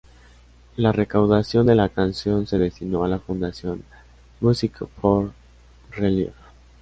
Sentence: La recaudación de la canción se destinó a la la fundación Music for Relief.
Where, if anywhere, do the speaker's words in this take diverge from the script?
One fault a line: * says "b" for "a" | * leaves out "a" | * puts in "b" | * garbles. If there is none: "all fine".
* leaves out "la"